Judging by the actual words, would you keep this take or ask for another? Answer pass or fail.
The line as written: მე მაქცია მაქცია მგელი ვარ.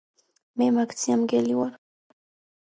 fail